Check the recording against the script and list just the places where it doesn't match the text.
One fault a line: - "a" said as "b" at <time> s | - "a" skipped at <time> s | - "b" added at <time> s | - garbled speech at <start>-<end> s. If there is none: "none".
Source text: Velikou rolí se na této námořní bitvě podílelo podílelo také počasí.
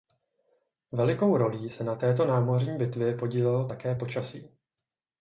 - "podílelo" skipped at 3.7 s